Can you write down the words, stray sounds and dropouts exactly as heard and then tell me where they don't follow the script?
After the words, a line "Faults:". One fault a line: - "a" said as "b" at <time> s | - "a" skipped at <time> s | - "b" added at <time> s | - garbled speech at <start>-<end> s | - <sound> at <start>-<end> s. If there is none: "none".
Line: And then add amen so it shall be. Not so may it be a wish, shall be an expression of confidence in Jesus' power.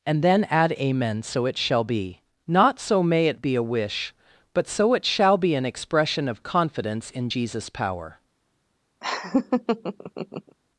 And then add amen so it shall be. Not so may it be a wish, but so it shall be an expression of confidence in Jesus' power.
Faults:
- "but so it" added at 4.5 s
- laugh at 9.0-10.6 s